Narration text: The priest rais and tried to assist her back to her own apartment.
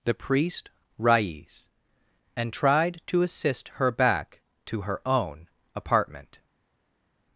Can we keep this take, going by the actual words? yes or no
yes